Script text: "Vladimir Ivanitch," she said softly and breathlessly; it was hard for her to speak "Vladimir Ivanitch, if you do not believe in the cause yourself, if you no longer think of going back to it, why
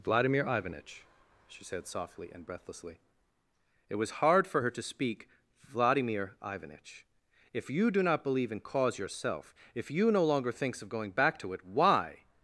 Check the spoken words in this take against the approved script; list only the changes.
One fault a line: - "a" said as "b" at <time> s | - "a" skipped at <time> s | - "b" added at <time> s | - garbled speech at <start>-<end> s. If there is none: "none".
- "the" skipped at 8.6 s
- "think" said as "thinks" at 10.5 s